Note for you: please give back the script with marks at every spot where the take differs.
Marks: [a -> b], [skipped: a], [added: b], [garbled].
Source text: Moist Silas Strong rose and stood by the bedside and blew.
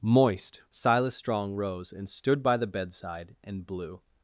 Moist Silas Strong rose and stood by the bedside and blew.